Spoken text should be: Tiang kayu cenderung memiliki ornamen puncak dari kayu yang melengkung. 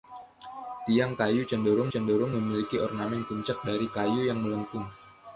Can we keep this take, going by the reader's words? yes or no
no